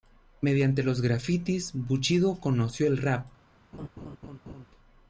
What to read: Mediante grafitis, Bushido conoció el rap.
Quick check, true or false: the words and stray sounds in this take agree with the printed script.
false